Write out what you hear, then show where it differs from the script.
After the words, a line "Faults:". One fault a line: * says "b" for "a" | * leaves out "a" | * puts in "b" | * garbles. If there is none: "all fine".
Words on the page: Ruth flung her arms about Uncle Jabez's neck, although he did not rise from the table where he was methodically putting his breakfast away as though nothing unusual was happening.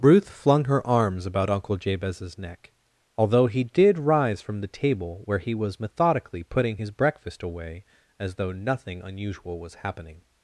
Ruth flung her arms about Uncle Jabez's neck, although he did rise from the table where he was methodically putting his breakfast away as though nothing unusual was happening.
Faults:
* leaves out "not"